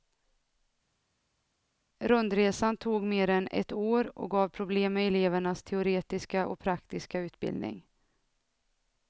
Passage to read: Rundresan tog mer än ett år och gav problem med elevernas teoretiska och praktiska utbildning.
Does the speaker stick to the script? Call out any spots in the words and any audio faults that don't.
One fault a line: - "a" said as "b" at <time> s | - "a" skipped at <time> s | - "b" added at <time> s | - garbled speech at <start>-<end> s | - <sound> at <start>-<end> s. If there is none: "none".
none